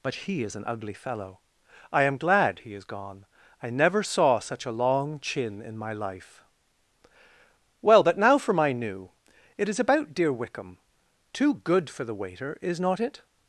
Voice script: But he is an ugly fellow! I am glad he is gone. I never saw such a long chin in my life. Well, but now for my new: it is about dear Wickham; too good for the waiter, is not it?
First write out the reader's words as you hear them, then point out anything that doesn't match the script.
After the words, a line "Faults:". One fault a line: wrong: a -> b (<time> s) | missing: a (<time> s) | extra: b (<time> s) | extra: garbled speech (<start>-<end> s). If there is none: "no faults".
But he is an ugly fellow! I am glad he is gone. I never saw such a long chin in my life. Well, but now for my new: it is about dear Wickham; too good for the waiter, is not it?
Faults:
no faults